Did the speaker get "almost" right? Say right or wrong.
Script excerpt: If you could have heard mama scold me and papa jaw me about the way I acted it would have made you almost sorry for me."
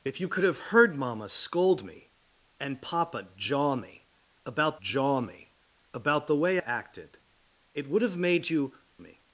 wrong